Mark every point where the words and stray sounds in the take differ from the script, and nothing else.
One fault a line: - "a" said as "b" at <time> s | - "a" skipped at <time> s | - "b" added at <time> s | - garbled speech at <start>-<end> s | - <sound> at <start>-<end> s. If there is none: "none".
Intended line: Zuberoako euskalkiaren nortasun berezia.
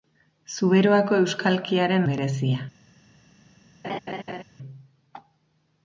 - "nortasun" skipped at 2.1 s
- laugh at 3.8-4.4 s